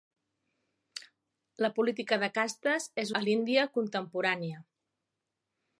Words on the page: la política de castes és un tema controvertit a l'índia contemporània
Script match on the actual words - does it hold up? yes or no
no